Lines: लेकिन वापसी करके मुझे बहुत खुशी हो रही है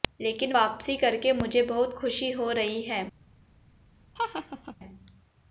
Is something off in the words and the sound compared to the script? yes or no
yes